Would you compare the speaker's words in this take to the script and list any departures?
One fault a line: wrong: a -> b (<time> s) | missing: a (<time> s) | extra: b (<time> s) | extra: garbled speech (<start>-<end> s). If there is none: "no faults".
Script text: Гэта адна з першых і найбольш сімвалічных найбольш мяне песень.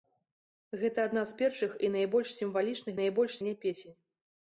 no faults